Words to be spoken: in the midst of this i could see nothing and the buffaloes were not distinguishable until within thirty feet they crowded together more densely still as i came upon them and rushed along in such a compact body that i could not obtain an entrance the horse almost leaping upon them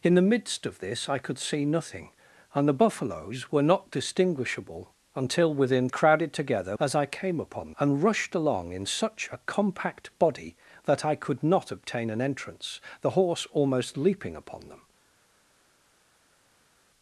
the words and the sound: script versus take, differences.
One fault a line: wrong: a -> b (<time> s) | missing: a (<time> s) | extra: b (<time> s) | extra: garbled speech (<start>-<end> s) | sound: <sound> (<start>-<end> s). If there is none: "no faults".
missing: thirty feet they (5.9 s)
missing: more densely still (6.8 s)
missing: them (7.7 s)